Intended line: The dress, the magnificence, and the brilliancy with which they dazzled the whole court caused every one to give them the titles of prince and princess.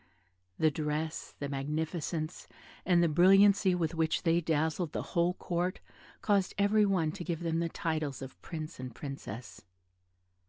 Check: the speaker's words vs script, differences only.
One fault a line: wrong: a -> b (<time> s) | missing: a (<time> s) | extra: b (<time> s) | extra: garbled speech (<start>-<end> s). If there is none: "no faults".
no faults